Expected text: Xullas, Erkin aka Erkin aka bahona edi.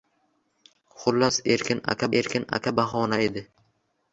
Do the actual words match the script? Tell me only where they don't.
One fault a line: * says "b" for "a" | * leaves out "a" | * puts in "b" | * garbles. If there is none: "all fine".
all fine